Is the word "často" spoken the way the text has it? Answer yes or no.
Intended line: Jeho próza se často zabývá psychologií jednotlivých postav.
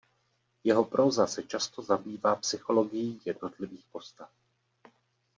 yes